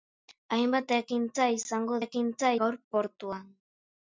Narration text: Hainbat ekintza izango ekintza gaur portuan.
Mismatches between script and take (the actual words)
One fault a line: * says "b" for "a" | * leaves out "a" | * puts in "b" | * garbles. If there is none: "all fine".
all fine